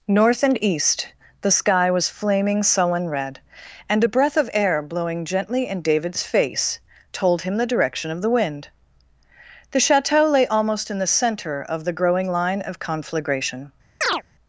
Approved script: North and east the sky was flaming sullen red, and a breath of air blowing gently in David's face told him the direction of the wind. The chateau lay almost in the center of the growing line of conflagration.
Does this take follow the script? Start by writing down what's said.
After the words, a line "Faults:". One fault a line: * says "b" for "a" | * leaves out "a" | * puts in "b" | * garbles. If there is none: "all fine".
North and east the sky was flaming sullen red, and a breath of air blowing gently in David's face told him the direction of the wind. The chateau lay almost in the center of the growing line of conflagration.
Faults:
all fine